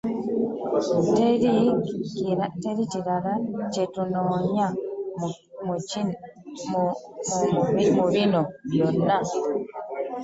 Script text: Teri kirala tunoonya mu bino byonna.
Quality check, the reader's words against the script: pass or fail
fail